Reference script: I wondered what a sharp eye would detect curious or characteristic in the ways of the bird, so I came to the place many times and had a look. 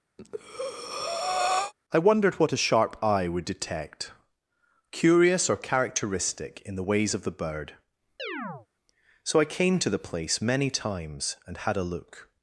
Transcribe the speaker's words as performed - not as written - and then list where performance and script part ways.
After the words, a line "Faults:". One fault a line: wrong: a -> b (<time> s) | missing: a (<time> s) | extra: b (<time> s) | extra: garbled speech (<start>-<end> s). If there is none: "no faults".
I wondered what a sharp eye would detect curious or characteristic in the ways of the bird, so I came to the place many times and had a look.
Faults:
no faults